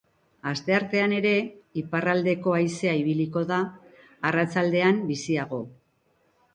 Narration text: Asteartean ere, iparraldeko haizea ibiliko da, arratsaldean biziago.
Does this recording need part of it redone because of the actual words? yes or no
no